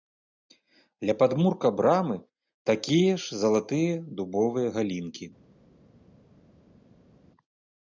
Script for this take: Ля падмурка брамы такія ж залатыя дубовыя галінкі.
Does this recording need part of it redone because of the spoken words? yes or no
no